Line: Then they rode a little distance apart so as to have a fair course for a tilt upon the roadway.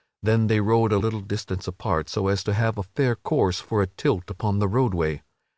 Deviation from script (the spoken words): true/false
false